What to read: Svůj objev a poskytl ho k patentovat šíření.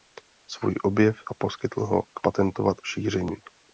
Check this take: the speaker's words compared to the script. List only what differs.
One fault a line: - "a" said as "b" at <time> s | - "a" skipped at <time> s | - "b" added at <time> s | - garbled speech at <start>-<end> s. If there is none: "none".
none